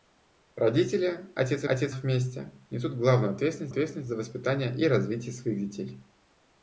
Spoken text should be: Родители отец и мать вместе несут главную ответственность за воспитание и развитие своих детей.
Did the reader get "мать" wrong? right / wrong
wrong